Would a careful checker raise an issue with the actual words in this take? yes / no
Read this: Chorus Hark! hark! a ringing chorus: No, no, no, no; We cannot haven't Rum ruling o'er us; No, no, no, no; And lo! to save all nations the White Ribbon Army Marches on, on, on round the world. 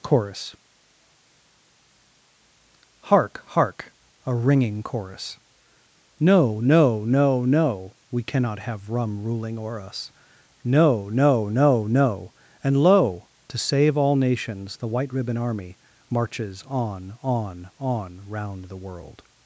yes